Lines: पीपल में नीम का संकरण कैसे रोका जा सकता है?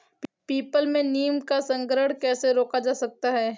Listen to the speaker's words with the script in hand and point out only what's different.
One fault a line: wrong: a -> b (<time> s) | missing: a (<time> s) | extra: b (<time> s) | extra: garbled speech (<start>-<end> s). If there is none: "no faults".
no faults